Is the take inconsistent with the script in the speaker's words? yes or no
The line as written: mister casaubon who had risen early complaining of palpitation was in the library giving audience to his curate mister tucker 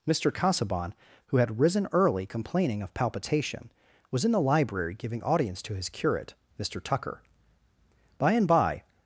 yes